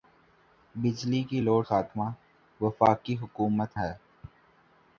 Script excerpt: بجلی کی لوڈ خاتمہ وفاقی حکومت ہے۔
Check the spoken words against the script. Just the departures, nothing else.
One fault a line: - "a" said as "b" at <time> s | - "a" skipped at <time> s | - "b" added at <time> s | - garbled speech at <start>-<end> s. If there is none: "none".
none